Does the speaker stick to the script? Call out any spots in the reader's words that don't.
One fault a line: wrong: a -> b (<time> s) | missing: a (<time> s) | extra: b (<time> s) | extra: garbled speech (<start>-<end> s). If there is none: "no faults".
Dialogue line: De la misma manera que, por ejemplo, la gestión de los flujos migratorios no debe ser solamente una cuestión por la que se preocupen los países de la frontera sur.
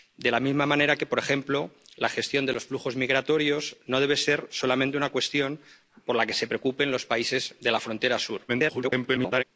extra: garbled speech (8.5-9.4 s)